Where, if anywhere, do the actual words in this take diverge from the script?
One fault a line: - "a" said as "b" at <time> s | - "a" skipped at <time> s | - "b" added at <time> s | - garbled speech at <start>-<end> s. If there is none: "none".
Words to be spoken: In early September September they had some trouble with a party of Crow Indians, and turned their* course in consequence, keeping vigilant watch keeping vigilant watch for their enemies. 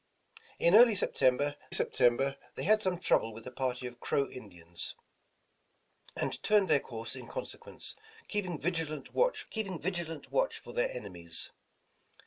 none